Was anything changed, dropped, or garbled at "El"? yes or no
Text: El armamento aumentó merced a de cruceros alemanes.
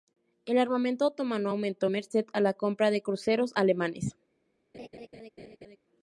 no